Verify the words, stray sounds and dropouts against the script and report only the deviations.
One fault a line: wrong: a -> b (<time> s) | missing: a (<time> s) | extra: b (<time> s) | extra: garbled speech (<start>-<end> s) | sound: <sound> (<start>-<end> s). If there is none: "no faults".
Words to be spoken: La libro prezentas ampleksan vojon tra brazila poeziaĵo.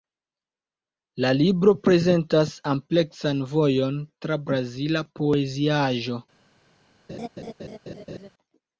sound: laugh (7.1-8.3 s)